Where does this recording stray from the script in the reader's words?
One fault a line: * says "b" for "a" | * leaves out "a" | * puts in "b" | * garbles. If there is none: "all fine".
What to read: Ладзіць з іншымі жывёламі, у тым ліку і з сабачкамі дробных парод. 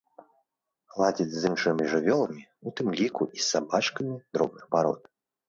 all fine